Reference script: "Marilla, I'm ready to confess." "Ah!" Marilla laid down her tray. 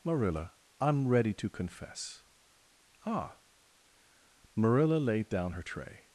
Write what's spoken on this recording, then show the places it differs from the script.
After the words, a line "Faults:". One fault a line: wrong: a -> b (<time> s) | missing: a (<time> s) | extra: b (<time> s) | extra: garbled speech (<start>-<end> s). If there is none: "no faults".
"Marilla, I'm ready to confess." "Ah!" Marilla laid down her tray.
Faults:
no faults